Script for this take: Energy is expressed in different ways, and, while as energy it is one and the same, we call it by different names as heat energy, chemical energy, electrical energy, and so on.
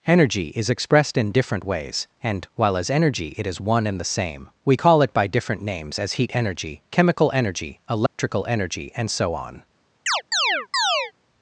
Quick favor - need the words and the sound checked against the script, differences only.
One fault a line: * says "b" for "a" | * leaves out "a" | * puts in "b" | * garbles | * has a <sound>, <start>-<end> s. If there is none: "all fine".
* has a dropout, 8.1-8.2 s
* has a chirp, 10.1-11.1 s